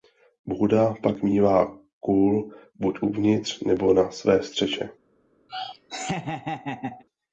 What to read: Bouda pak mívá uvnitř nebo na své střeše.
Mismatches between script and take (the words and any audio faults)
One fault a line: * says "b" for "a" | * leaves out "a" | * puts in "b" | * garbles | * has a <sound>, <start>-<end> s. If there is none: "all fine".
* puts in "kůl buď"
* has a laugh, 5.5-7.0 s